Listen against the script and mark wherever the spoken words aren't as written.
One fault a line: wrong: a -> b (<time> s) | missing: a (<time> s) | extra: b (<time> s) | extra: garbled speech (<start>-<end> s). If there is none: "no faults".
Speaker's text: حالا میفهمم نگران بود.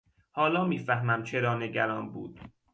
extra: چرا (1.2 s)